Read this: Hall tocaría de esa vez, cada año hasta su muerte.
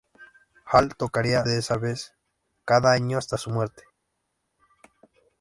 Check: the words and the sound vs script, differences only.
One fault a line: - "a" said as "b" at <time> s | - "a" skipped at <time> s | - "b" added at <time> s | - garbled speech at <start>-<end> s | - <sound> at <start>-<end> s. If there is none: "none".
none